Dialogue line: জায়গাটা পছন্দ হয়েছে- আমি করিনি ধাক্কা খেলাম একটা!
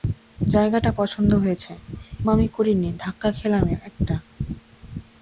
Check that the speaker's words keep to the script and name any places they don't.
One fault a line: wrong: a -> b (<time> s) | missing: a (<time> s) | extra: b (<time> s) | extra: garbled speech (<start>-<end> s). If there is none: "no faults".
no faults